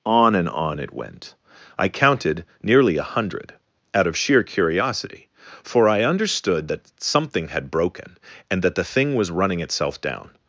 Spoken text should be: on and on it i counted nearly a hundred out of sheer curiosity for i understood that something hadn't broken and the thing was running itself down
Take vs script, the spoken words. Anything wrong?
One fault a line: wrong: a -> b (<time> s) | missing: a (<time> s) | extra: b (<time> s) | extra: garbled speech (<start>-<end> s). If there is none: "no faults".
extra: went (0.9 s)
wrong: hadn't -> had (7.5 s)
extra: that (8.6 s)